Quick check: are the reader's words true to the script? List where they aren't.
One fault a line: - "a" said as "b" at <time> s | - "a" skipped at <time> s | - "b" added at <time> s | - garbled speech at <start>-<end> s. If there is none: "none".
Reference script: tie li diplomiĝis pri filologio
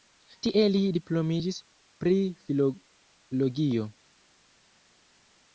none